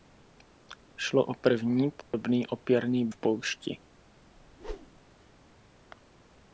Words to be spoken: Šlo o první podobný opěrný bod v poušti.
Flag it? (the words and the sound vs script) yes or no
yes